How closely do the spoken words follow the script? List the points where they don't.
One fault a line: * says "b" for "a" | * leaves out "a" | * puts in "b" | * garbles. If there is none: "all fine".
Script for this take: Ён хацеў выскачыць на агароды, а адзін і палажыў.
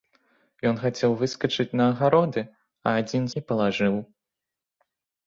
all fine